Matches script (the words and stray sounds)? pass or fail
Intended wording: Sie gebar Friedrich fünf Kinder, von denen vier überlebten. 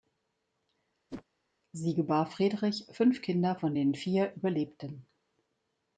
fail